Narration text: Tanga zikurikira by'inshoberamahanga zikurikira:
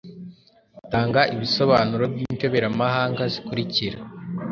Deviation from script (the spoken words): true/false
true